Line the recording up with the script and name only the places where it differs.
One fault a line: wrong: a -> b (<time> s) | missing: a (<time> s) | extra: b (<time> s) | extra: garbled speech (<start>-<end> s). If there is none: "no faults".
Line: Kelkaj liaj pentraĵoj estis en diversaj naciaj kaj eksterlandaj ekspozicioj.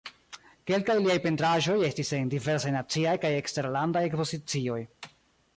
no faults